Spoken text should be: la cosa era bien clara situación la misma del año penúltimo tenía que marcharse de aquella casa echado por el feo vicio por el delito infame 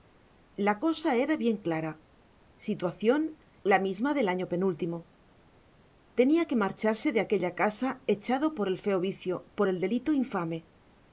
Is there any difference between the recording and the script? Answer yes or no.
no